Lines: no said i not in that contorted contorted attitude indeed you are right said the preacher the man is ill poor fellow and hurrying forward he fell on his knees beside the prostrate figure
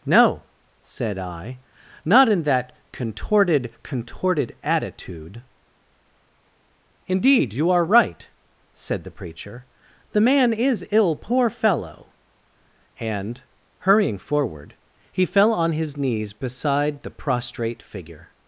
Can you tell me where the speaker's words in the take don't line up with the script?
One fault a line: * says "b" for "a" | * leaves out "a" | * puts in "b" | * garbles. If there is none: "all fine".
all fine